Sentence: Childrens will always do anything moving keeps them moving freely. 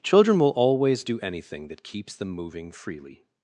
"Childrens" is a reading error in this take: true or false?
true